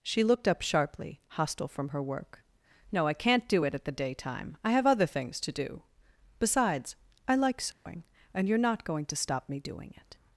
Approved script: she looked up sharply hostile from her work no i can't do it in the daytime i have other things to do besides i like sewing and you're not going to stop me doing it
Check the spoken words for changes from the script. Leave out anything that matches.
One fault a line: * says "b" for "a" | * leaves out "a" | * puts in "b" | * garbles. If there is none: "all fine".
* says "at" for "in"